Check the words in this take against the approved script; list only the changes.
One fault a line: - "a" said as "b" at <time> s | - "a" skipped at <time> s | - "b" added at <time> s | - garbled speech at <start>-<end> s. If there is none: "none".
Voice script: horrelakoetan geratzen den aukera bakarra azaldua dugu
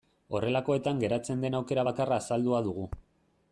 none